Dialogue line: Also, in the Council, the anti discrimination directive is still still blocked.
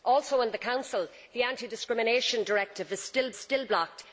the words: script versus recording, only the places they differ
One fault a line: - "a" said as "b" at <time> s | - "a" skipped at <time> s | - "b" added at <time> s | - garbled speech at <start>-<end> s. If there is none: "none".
none